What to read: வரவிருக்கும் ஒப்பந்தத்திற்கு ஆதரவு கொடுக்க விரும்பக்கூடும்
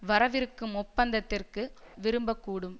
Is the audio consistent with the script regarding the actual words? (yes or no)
no